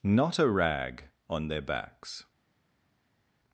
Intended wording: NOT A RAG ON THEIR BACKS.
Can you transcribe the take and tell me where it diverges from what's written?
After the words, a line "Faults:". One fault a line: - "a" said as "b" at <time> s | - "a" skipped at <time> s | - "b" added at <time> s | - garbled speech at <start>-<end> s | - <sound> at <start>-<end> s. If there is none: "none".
NOT A RAG ON THEIR BACKS.
Faults:
none